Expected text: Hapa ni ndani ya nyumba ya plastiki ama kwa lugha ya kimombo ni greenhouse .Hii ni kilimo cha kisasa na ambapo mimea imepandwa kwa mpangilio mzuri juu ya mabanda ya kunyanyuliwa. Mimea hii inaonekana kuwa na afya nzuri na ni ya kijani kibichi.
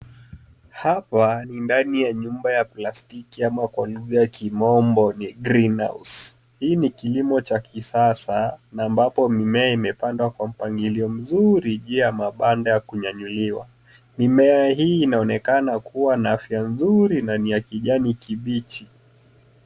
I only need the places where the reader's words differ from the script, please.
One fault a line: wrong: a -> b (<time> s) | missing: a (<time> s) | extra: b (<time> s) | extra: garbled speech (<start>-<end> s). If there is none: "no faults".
no faults